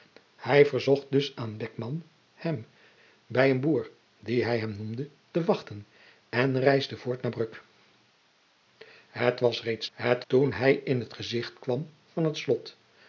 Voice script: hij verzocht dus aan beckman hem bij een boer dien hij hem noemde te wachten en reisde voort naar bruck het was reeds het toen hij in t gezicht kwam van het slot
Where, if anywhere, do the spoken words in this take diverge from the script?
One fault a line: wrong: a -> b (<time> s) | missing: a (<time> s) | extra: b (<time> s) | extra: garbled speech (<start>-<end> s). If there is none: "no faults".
no faults